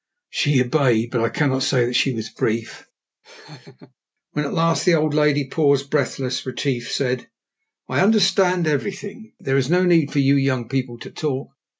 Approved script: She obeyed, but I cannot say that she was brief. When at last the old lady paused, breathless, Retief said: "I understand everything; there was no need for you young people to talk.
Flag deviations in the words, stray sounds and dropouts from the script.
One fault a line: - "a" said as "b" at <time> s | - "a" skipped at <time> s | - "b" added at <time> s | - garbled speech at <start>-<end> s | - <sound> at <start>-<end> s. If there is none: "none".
- laugh at 3.2-3.9 s
- "was" said as "is" at 9.6 s